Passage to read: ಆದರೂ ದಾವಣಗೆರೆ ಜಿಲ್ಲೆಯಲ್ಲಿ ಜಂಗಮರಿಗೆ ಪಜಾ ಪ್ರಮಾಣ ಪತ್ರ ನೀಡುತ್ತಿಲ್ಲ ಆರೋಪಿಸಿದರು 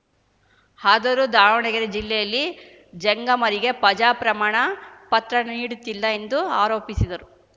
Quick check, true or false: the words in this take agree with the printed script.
false